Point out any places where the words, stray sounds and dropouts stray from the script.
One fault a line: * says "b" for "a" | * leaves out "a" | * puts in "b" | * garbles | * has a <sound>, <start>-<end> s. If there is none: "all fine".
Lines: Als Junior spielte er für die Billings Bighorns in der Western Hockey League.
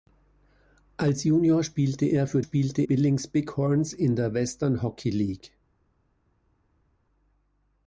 * says "spielte" for "die"